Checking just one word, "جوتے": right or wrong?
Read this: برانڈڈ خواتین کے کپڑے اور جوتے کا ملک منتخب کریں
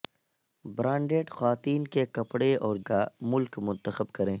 wrong